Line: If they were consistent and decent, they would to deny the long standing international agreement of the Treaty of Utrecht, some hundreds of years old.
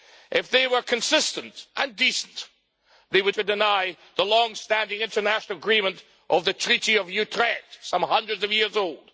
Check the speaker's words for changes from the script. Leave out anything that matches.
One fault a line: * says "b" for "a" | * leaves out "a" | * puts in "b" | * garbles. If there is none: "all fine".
all fine